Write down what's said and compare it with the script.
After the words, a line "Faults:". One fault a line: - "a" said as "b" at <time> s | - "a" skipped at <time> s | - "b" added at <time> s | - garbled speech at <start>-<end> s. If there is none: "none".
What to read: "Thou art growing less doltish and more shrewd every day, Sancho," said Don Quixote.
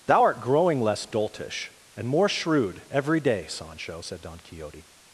"Thou art growing less doltish and more shrewd every day, Sancho," said Don Quixote.
Faults:
none